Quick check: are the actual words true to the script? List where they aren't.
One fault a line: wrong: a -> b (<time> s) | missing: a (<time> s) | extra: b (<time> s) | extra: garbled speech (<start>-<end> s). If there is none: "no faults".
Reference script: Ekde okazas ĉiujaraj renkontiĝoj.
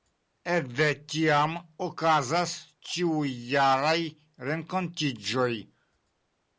extra: tiam (1.1 s)